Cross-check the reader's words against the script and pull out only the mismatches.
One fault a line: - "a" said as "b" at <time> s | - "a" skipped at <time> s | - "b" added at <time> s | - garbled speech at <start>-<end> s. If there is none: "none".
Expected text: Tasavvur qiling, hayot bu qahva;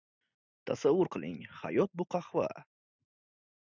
none